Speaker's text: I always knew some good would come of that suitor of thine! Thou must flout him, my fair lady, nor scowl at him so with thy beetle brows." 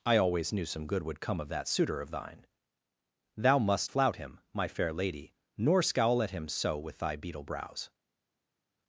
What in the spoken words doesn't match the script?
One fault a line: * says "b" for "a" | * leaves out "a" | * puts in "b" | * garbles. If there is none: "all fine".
all fine